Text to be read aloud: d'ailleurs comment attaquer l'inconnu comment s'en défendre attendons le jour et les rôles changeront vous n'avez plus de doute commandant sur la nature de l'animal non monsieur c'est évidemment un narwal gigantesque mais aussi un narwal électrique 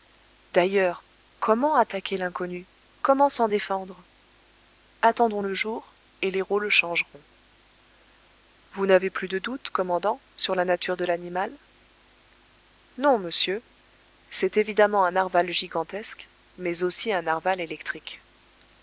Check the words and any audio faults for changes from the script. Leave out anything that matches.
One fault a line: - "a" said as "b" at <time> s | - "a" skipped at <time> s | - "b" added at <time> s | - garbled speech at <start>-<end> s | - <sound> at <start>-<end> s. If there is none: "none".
none